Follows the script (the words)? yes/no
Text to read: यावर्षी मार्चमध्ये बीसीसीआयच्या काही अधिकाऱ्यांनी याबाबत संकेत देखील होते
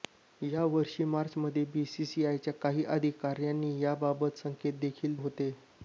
yes